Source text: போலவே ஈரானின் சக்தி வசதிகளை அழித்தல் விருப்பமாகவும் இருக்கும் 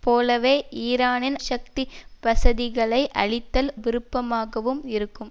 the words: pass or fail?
pass